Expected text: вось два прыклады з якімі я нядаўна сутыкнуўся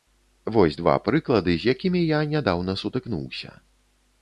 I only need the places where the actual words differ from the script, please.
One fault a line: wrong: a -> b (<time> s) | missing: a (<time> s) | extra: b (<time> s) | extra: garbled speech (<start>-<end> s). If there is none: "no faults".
no faults